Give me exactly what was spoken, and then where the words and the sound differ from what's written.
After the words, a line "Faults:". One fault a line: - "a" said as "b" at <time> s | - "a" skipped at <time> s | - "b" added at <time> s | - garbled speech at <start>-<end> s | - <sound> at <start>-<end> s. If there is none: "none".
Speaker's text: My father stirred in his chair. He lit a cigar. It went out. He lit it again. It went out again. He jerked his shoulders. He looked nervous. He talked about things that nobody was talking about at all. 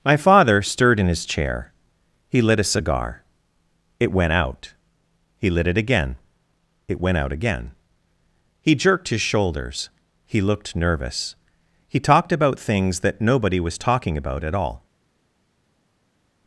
My father stirred in his chair. He lit a cigar. It went out. He lit it again. It went out again. He jerked his shoulders. He looked nervous. He talked about things that nobody was talking about at all.
Faults:
none